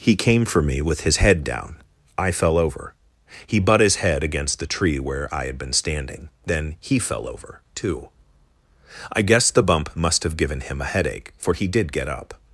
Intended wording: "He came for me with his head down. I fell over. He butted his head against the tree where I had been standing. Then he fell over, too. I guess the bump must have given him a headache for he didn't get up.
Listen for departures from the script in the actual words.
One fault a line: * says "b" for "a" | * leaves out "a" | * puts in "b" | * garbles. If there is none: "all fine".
* says "butt" for "butted"
* says "did" for "didn't"